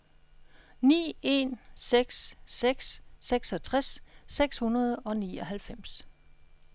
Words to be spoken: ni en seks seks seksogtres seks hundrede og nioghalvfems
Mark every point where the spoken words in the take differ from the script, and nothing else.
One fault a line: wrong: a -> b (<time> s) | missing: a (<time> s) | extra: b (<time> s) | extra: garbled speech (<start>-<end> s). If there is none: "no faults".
no faults